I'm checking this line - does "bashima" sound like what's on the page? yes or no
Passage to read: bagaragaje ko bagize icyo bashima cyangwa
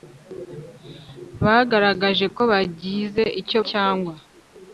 no